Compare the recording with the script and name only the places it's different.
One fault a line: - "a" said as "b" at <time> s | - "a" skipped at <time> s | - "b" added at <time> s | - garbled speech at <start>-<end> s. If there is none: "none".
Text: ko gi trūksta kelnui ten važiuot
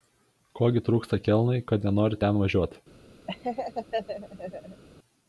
- "kad nenori" added at 1.7 s